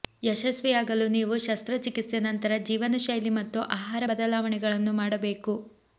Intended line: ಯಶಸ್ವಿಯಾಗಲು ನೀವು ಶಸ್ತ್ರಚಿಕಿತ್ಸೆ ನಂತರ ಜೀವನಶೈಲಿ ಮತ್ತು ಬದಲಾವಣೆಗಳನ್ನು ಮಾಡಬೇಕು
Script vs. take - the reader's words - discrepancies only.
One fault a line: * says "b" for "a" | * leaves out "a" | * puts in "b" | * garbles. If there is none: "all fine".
* puts in "ಆಹಾರ"